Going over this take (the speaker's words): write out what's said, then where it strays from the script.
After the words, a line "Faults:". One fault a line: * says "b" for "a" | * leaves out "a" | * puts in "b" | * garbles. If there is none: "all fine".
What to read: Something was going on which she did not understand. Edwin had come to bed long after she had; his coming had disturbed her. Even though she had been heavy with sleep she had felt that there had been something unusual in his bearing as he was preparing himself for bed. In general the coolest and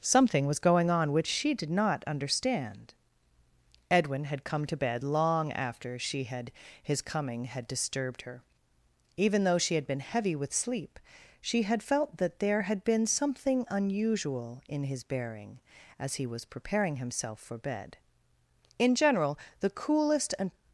Something was going on which she did not understand. Edwin had come to bed long after she had; his coming had disturbed her. Even though she had been heavy with sleep she had felt that there had been something unusual in his bearing as he was preparing himself for bed. In general the coolest and
Faults:
all fine